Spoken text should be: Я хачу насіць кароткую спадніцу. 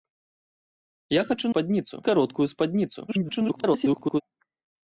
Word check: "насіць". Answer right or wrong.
wrong